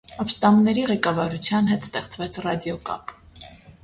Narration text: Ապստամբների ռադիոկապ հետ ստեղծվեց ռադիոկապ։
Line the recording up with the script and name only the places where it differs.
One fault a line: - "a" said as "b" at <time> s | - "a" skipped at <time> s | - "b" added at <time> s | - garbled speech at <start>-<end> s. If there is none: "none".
- "ռադիոկապ" said as "ղեկավարության" at 0.9 s